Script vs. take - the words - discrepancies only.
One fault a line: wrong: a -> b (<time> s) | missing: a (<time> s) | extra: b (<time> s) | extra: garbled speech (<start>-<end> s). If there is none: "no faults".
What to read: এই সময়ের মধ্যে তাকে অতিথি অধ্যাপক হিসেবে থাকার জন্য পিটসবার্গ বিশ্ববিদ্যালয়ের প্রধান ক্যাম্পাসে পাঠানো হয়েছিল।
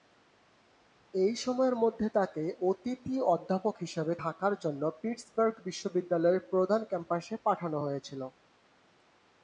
no faults